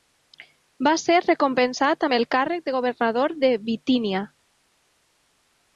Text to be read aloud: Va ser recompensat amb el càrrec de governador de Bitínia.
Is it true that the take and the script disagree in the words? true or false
false